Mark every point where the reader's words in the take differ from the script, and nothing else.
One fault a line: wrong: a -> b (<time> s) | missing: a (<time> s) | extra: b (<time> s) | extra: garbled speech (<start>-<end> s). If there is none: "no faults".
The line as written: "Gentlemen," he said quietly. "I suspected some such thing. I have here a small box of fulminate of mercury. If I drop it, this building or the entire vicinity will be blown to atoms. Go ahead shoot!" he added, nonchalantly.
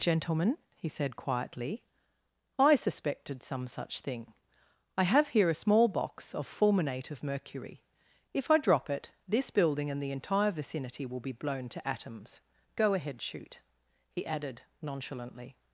wrong: or -> and (9.9 s)